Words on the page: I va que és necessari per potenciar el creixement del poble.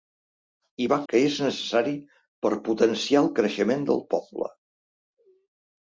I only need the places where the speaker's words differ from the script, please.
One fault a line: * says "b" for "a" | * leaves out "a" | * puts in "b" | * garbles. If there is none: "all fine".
all fine